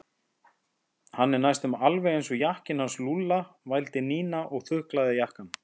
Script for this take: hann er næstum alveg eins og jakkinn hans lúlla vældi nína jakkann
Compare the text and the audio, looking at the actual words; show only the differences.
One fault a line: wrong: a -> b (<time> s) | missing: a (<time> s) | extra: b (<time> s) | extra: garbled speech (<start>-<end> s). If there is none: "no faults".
extra: og þuklaði (4.6 s)